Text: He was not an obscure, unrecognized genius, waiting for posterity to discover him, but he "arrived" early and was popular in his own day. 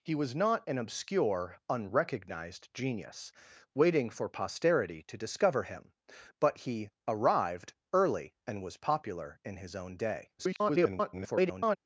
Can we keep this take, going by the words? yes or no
no